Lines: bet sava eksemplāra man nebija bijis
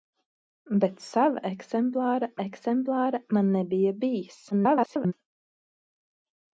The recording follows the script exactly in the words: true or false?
false